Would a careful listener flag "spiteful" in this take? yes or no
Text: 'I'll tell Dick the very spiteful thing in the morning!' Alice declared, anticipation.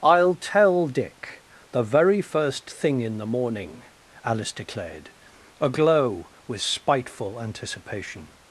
yes